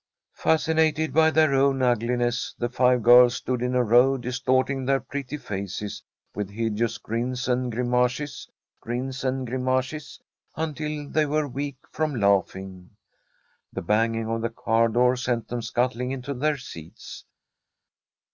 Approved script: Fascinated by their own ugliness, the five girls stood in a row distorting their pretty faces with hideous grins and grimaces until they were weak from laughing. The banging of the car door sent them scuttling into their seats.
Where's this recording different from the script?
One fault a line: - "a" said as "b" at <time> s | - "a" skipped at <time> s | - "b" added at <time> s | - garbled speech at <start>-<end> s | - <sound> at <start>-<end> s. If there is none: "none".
- "grins and grimaces" added at 8.8 s